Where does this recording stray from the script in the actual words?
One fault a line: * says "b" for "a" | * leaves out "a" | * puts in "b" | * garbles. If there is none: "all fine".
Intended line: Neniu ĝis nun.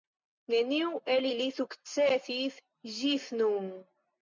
* puts in "el ili sukcesis"